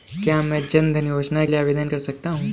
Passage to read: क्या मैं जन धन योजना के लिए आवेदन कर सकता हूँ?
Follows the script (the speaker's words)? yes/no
no